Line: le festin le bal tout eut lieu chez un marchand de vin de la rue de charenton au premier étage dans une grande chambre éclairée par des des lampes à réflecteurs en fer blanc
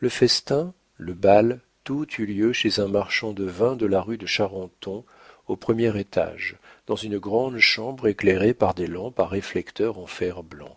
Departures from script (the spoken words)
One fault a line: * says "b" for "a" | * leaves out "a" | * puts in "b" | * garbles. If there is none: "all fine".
* leaves out "des"